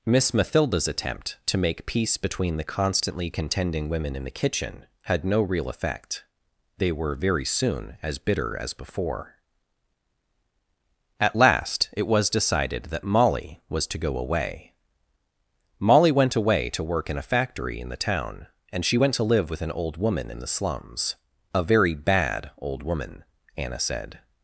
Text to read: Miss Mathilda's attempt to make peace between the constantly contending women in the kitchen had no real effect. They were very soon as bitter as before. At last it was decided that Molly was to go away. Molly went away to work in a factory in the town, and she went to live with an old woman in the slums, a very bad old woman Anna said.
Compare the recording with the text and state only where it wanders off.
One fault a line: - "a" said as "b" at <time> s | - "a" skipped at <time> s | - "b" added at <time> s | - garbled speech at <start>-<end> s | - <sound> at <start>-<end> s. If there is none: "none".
none